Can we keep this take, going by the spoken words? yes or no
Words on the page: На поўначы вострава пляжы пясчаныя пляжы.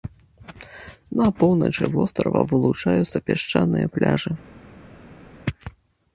no